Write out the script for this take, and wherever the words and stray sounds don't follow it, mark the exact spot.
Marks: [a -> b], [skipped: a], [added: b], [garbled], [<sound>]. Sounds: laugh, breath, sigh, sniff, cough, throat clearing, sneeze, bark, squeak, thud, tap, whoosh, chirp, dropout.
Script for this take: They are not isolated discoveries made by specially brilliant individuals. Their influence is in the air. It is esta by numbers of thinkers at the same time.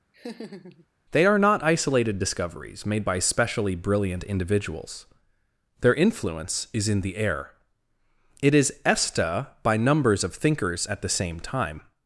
[laugh] They are not isolated discoveries made by specially brilliant individuals. Their influence is in the air. It is esta by numbers of thinkers at the same time.